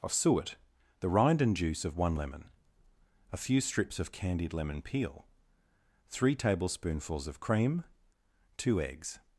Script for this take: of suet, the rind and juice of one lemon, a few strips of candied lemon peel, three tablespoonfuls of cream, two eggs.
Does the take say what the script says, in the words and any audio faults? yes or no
yes